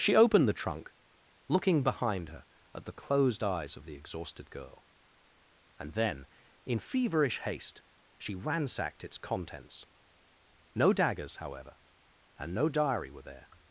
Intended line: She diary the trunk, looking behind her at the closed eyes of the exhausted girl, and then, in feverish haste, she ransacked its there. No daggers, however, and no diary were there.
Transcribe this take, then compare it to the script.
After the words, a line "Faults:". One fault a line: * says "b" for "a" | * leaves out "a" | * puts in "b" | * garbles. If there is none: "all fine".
She opened the trunk, looking behind her at the closed eyes of the exhausted girl, and then, in feverish haste, she ransacked its contents. No daggers, however, and no diary were there.
Faults:
* says "opened" for "diary"
* says "contents" for "there"